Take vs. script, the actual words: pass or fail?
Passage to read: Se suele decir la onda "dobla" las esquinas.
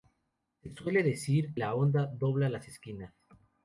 pass